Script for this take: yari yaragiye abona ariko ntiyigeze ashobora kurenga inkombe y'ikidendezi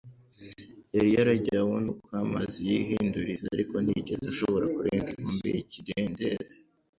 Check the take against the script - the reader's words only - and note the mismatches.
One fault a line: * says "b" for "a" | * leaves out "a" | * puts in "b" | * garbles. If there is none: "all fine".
* puts in "uko amazi yihinduriza"